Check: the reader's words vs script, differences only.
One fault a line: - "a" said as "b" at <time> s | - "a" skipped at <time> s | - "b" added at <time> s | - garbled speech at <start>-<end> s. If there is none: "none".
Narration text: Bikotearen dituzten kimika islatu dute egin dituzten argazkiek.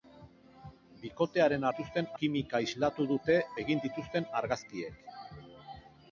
none